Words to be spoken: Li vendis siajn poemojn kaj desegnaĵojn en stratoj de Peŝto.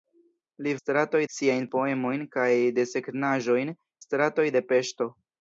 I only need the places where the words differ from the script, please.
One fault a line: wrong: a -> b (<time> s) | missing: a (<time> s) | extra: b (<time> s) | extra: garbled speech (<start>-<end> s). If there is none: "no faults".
wrong: vendis -> stratoj (0.8 s)
missing: en (3.7 s)